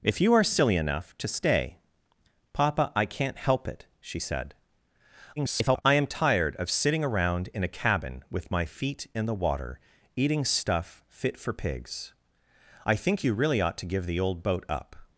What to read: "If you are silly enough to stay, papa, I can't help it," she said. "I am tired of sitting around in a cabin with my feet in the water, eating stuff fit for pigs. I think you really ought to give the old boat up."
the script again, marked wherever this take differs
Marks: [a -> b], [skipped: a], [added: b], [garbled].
"If you are silly enough to stay, papa, I can't help it," she said. [garbled] "I am tired of sitting around in a cabin with my feet in the water, eating stuff fit for pigs. I think you really ought to give the old boat up."